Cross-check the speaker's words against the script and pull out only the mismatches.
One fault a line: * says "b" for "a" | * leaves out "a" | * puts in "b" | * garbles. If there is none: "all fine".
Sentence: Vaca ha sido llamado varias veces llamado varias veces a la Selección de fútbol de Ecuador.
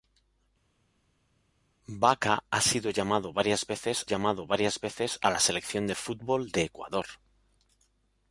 all fine